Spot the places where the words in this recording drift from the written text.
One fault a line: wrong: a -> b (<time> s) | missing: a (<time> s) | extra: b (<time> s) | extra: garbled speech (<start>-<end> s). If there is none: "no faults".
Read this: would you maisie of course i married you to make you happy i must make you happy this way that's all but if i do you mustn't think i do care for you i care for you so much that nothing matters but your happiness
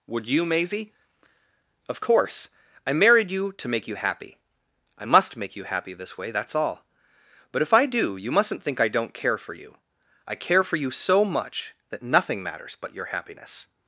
wrong: do -> don't (8.9 s)